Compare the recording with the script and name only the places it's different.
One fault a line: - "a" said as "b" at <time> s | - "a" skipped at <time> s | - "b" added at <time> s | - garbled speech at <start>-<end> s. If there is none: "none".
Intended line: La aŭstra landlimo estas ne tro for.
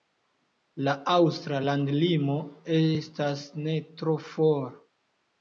none